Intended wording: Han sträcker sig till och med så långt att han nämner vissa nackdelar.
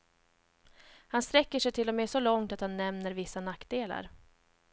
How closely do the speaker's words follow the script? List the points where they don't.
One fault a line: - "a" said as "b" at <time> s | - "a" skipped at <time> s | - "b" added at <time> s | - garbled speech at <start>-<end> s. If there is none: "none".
none